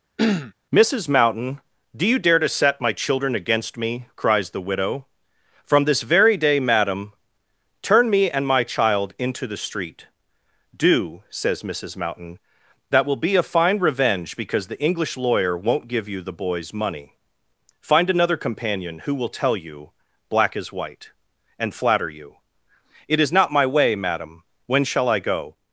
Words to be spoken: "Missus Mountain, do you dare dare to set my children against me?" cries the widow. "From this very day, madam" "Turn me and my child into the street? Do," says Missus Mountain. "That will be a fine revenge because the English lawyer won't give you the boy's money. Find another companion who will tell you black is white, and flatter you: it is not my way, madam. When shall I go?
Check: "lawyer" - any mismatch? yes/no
no